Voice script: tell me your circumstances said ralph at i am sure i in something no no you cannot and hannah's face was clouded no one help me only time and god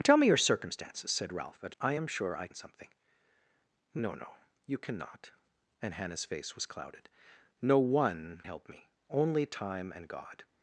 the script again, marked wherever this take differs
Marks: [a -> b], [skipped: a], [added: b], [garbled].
tell me your circumstances said ralph at i am sure i in something no no you cannot and hannah's face was clouded no one help me only time and god